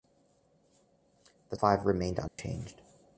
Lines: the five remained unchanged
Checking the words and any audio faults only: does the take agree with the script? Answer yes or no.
no